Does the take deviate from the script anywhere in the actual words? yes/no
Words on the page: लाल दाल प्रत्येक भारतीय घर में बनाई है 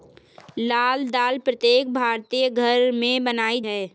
no